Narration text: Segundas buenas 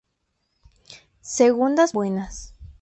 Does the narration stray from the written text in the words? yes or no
no